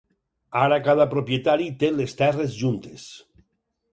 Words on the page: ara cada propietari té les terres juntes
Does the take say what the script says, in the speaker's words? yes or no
yes